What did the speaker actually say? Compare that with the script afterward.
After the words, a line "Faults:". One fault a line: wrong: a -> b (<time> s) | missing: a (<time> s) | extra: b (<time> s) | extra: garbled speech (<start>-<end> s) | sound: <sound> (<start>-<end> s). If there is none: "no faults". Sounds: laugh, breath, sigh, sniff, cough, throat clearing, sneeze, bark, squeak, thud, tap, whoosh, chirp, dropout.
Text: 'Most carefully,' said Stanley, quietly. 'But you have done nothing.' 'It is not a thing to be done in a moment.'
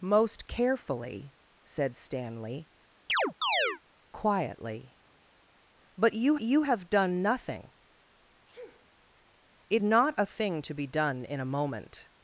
'Most carefully,' said Stanley, quietly. 'But you you have done nothing.' 'It not a thing to be done in a moment.'
Faults:
sound: chirp (3.1-3.8 s)
extra: you (6.4 s)
sound: sneeze (8.5-8.9 s)
missing: is (9.8 s)